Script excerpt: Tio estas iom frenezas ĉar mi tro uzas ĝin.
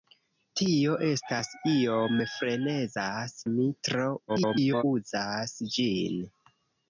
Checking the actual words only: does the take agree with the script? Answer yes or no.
no